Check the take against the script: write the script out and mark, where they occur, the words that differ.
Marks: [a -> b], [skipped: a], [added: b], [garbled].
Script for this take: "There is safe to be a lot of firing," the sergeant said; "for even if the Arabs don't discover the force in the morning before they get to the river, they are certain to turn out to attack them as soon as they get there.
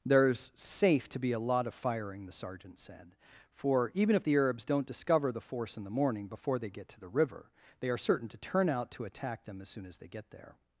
"There is safe to be a lot of firing," the sergeant said; "for even if the Arabs don't discover the force in the morning before they get to the river, they are certain to turn out to attack them as soon as they get there.